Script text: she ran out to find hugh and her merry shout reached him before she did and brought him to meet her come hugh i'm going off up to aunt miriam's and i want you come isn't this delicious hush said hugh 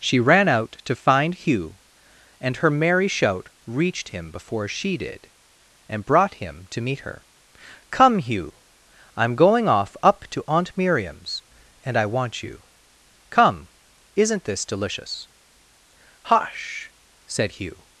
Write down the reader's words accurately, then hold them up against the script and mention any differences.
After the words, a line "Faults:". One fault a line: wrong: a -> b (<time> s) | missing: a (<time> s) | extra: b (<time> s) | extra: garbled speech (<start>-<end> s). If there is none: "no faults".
she ran out to find hugh and her merry shout reached him before she did and brought him to meet her come hugh i'm going off up to aunt miriam's and i want you come isn't this delicious hush said hugh
Faults:
no faults